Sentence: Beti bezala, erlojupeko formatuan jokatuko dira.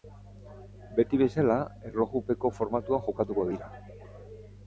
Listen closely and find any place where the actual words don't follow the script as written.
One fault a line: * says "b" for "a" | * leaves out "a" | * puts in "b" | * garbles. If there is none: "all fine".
all fine